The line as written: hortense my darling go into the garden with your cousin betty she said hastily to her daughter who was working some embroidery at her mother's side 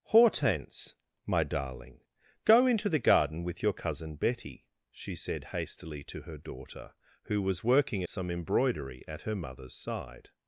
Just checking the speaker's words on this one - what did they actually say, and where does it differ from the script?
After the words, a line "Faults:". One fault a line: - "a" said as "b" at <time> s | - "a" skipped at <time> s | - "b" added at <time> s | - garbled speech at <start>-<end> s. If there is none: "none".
hortense my darling go into the garden with your cousin betty she said hastily to her daughter who was working some embroidery at her mother's side
Faults:
none